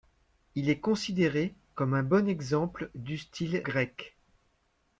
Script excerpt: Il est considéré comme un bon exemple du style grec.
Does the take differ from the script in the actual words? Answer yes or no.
no